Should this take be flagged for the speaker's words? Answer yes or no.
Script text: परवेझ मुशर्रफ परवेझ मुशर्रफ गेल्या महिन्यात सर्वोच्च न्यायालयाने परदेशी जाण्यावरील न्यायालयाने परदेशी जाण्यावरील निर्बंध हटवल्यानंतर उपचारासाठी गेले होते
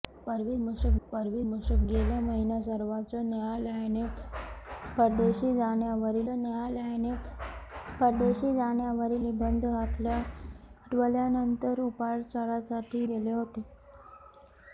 no